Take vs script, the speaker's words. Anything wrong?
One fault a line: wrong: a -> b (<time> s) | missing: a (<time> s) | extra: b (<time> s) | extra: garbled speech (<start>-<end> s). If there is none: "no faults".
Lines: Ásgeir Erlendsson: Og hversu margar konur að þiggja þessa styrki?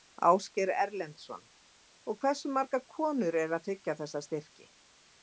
extra: eru (3.4 s)